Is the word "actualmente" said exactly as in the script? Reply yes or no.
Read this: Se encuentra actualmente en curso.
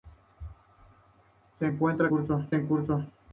no